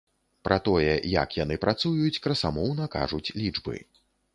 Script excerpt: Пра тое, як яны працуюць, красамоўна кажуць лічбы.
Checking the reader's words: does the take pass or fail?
pass